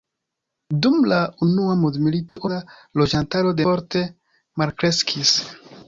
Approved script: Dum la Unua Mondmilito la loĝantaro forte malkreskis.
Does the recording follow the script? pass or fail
pass